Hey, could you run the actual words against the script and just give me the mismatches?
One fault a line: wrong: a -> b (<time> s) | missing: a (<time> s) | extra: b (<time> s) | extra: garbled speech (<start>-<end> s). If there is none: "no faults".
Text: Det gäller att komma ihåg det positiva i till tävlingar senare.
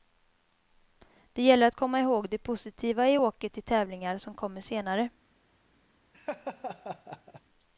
extra: åket (3.2 s)
extra: som kommer (4.2 s)